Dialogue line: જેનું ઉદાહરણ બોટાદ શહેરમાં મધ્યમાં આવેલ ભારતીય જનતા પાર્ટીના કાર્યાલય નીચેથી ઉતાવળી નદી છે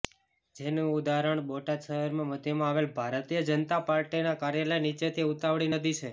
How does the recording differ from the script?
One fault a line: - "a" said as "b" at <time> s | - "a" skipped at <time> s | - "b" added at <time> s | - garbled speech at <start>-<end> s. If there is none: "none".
none